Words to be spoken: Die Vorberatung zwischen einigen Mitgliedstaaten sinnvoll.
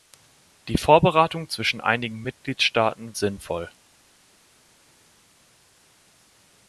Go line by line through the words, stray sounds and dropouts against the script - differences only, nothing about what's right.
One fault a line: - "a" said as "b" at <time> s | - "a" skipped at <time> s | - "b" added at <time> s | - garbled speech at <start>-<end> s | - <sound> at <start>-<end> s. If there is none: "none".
none